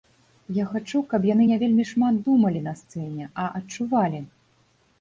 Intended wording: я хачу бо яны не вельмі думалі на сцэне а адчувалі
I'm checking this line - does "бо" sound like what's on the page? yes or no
no